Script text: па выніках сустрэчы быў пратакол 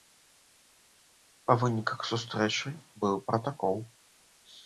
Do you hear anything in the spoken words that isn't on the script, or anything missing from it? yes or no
no